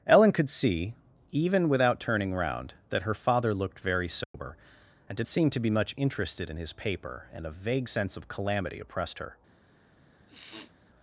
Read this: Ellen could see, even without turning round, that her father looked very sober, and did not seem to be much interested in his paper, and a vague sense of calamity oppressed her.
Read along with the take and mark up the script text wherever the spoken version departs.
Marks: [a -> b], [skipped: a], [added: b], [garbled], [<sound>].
Ellen could see, even without turning round, that her father looked very sober, [dropout] and did [skipped: not] seem to be much interested in his paper, and a vague sense of calamity oppressed her. [sniff]